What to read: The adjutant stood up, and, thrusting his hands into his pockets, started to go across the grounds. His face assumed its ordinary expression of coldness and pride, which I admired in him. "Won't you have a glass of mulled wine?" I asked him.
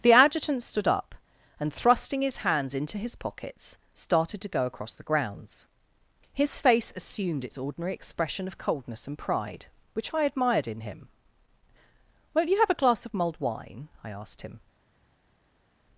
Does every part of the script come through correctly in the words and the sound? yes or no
yes